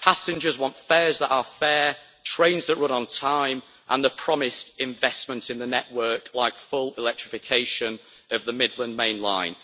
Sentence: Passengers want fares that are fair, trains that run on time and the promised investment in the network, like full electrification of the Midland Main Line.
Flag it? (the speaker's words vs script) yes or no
no